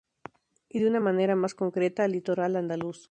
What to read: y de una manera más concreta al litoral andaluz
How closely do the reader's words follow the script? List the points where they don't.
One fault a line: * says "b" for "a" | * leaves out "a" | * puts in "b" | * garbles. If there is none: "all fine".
all fine